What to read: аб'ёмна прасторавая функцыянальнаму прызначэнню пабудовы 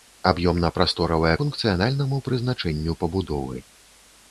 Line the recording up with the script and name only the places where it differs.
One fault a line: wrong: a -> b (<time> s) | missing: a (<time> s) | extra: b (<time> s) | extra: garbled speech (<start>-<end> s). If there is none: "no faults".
no faults